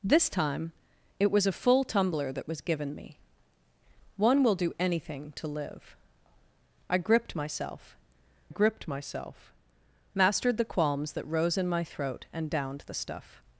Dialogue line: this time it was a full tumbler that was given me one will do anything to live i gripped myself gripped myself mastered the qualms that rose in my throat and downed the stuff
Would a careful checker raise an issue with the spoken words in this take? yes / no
no